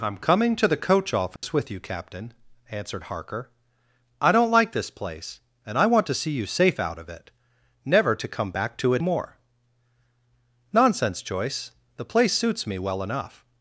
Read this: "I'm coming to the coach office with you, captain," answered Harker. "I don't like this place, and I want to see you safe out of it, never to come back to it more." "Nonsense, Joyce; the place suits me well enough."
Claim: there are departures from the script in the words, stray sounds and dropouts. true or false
true